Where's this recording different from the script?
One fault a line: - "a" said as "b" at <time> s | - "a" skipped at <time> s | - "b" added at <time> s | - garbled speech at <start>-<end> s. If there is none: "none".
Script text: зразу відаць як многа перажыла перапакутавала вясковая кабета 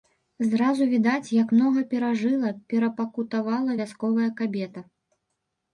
none